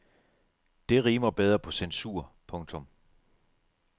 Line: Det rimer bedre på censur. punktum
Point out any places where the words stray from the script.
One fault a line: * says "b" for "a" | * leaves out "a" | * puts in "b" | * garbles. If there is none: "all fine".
all fine